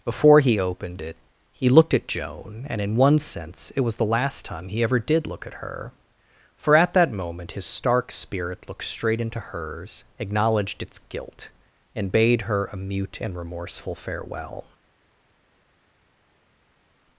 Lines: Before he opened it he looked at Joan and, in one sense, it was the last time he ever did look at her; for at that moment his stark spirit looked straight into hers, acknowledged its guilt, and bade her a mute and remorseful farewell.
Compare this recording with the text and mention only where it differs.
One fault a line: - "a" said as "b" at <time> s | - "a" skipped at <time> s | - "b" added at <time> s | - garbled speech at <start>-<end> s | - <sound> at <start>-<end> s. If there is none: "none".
none